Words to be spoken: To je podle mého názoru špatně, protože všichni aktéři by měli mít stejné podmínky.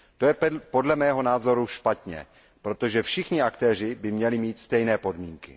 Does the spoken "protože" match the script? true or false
true